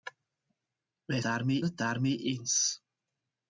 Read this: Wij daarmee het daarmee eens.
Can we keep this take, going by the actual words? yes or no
yes